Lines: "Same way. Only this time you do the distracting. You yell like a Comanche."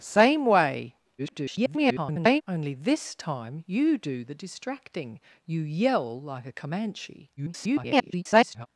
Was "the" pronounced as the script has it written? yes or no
yes